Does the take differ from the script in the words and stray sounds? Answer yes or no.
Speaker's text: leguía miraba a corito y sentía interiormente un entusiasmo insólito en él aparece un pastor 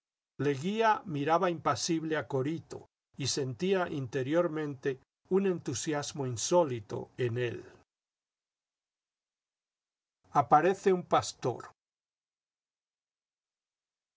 yes